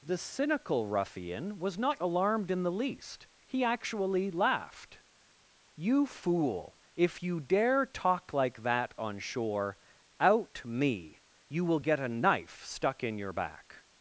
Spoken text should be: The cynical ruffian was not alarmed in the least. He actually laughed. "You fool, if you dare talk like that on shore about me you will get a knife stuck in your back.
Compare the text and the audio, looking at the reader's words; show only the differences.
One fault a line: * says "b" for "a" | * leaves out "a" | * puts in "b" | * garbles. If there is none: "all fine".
* says "out" for "about"